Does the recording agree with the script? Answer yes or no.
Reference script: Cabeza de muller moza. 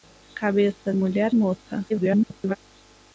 no